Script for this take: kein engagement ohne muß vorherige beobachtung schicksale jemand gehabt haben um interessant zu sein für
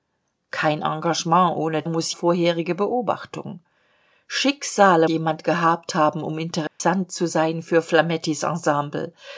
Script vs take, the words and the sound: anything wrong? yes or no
yes